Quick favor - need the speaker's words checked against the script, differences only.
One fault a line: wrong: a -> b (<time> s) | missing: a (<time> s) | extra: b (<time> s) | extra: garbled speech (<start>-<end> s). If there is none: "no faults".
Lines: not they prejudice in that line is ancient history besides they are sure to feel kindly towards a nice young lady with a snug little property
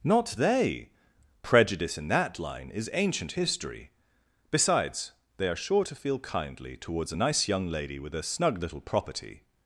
no faults